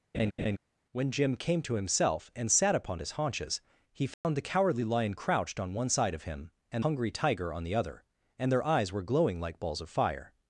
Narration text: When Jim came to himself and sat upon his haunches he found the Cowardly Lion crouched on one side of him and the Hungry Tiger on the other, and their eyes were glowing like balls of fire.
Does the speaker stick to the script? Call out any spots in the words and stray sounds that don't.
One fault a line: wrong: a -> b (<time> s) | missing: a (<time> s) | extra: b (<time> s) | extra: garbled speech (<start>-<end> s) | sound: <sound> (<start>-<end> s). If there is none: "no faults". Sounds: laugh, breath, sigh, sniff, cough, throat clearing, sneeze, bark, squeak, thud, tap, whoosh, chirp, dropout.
sound: laugh (0.1-0.6 s)
sound: dropout (4.1-4.2 s)
missing: the (6.8 s)